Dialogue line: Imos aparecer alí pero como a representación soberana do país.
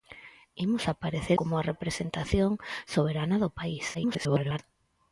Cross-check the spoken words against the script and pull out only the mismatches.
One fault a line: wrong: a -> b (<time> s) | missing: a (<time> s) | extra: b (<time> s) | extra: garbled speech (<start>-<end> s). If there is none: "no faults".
missing: alí pero (1.4 s)
extra: garbled speech (3.9-4.6 s)